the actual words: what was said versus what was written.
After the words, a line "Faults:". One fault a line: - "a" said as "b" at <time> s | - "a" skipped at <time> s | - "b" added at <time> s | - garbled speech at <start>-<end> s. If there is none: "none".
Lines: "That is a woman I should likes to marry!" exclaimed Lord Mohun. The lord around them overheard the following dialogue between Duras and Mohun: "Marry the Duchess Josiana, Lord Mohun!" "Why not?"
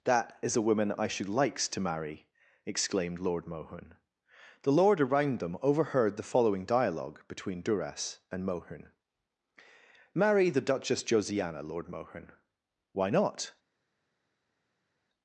"That is a woman I should likes to marry!" exclaimed Lord Mohun. The lord around them overheard the following dialogue between Duras and Mohun: "Marry the Duchess Josiana, Lord Mohun!" "Why not?"
Faults:
none